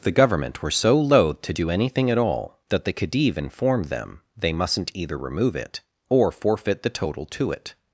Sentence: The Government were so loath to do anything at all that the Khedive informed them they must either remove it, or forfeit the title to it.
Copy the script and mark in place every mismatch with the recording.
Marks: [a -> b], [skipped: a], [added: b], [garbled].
The Government were so loath to do anything at all that the Khedive informed them they [must -> mustn't] either remove it, or forfeit the [title -> total] to it.